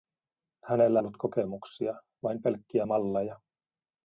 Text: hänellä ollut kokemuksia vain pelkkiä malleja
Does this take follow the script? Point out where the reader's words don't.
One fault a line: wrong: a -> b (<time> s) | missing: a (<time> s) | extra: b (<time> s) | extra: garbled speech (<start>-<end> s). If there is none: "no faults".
no faults